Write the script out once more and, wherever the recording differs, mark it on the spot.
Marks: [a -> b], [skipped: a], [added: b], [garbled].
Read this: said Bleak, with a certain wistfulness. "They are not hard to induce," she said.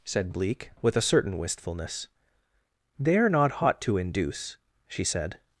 said Bleak, with a certain wistfulness. "They are not [hard -> hot] to induce," she said.